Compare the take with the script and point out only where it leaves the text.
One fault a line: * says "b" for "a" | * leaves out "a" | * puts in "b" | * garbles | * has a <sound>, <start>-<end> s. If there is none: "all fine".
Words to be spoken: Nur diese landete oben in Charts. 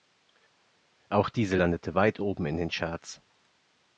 * says "Auch" for "Nur"
* puts in "weit"
* puts in "den"